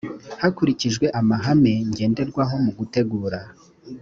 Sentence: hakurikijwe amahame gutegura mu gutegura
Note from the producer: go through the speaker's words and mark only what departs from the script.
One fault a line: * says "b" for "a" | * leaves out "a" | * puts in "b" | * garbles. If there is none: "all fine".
* says "ngenderwaho" for "gutegura"